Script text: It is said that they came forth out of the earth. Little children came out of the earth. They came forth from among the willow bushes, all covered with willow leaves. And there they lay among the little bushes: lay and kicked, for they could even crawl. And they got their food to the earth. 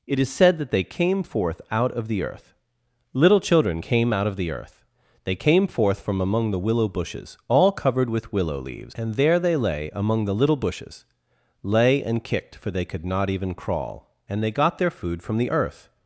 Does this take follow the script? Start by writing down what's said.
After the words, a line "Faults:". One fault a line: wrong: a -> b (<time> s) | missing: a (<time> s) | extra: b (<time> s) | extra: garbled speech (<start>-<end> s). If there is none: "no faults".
It is said that they came forth out of the earth. Little children came out of the earth. They came forth from among the willow bushes, all covered with willow leaves. And there they lay among the little bushes: lay and kicked, for they could not even crawl. And they got their food from the earth.
Faults:
extra: not (13.0 s)
wrong: to -> from (15.2 s)